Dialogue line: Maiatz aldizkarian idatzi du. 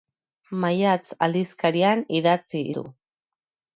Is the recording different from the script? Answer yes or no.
no